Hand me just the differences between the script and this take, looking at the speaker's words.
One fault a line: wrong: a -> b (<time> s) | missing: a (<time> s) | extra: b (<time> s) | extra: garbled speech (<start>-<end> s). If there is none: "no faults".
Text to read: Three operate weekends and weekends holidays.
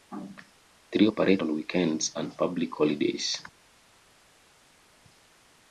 extra: on (1.4 s)
wrong: weekends -> public (2.4 s)